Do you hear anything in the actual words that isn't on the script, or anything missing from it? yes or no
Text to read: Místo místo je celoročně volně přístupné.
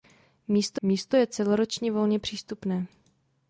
no